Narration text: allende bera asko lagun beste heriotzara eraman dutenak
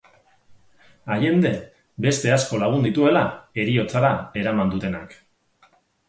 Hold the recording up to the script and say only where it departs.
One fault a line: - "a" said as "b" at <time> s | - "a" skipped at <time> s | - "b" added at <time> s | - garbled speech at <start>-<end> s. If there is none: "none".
- "bera" said as "beste" at 2.0 s
- "beste" said as "dituela" at 2.9 s